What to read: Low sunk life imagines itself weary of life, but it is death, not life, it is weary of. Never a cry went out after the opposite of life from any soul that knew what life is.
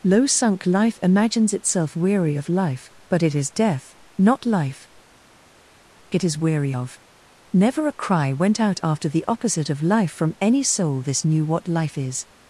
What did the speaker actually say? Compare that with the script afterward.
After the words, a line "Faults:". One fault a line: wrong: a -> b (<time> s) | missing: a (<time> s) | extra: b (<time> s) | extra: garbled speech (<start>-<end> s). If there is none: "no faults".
Low sunk life imagines itself weary of life, but it is death, not life, it is weary of. Never a cry went out after the opposite of life from any soul this knew what life is.
Faults:
wrong: that -> this (11.0 s)